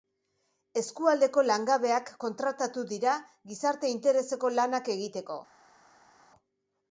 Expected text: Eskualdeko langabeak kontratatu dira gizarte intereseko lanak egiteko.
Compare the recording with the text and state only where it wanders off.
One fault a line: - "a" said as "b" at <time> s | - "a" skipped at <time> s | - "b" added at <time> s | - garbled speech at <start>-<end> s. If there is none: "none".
none